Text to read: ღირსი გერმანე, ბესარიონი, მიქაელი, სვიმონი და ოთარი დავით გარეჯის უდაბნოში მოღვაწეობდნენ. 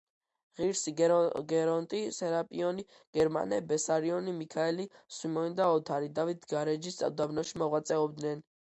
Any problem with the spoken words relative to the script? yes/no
yes